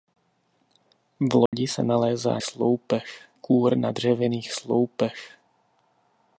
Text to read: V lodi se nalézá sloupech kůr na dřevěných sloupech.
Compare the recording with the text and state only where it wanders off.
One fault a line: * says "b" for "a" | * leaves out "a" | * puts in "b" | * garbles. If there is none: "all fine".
all fine